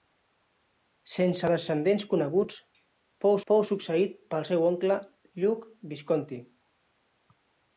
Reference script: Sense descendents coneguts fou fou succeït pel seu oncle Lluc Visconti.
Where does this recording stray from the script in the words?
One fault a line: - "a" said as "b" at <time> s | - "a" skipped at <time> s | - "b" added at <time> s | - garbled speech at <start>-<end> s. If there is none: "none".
none